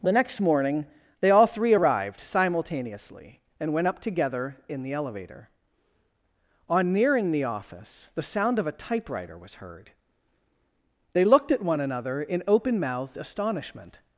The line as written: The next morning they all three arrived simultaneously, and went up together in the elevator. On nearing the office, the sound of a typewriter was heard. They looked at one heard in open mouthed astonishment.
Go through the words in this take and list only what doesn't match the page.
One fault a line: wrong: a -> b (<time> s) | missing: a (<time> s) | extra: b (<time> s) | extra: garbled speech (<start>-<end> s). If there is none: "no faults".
wrong: heard -> another (11.8 s)